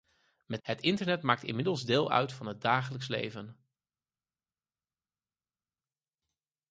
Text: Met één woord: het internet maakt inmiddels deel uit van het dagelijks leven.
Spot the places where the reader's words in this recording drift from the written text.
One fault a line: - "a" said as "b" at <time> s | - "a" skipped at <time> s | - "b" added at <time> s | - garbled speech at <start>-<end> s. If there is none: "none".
- "één woord" skipped at 0.6 s